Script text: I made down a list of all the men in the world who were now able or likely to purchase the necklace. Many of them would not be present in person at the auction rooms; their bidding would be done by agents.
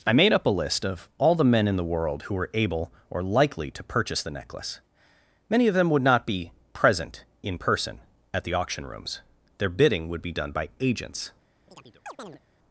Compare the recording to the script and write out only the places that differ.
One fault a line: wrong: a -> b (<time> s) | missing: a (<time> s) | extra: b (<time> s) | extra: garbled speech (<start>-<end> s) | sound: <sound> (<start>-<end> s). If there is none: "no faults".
wrong: down -> up (0.3 s)
missing: now (2.5 s)
sound: chirp (11.7-12.4 s)